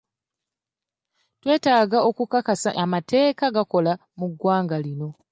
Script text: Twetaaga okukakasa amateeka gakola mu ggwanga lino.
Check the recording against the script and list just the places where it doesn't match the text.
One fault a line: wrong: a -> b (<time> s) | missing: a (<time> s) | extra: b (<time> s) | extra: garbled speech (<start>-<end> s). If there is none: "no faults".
no faults